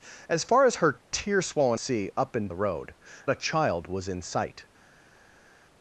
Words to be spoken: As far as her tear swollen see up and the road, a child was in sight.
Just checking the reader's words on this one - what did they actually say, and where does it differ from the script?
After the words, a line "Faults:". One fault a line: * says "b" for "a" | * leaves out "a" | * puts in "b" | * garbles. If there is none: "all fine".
As far as her tear swollen see up and the road, a child was in sight.
Faults:
all fine